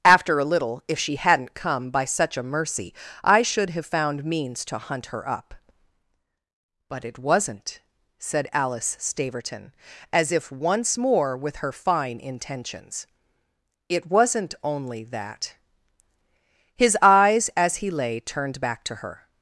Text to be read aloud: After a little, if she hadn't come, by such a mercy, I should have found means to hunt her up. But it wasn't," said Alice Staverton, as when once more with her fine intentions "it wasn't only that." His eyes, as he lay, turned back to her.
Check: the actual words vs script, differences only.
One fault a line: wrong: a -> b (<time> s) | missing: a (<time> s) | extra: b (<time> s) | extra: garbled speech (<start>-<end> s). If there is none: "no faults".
wrong: when -> if (10.3 s)